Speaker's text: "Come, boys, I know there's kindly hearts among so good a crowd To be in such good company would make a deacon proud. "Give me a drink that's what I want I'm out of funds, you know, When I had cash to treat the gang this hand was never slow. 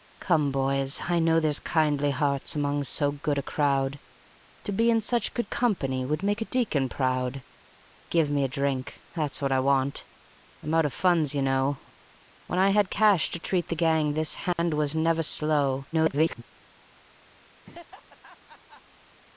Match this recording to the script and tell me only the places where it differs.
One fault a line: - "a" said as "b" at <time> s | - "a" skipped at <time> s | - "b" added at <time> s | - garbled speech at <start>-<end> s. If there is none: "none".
- garbled speech at 15.9-16.4 s